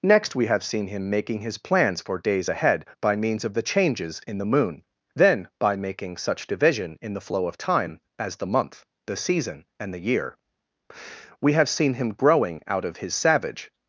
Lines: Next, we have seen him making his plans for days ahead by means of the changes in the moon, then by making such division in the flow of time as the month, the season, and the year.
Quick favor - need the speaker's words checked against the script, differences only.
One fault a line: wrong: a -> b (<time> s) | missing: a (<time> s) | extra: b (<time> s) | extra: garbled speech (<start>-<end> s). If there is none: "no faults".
extra: We have seen him growing out of his savage (11.4 s)